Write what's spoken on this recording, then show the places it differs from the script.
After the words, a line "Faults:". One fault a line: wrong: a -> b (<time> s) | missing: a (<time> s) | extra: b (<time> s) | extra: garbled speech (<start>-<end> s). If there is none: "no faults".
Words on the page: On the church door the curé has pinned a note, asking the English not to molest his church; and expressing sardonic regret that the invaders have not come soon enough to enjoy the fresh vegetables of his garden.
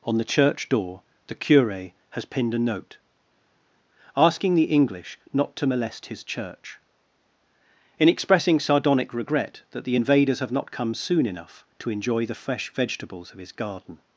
On the church door the curé has pinned a note, asking the English not to molest his church; in expressing sardonic regret that the invaders have not come soon enough to enjoy the fresh vegetables of his garden.
Faults:
wrong: and -> in (8.0 s)